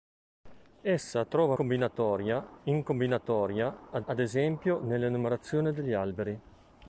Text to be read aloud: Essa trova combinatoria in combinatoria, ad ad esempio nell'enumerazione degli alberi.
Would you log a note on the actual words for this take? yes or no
no